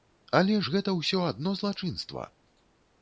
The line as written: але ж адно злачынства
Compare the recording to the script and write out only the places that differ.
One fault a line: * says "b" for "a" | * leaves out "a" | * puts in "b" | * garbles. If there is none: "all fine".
* puts in "гэта ўсё"